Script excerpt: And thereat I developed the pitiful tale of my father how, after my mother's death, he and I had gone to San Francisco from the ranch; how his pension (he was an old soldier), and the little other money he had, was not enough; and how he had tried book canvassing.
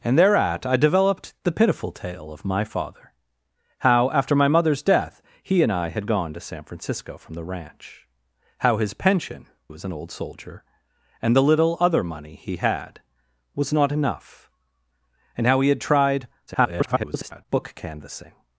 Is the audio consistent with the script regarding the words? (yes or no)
no